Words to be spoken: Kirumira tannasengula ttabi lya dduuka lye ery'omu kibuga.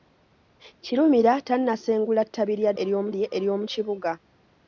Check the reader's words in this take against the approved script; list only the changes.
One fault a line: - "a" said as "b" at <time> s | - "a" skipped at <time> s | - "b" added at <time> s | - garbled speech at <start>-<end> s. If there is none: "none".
- "dduuka" said as "ery'omu" at 2.8 s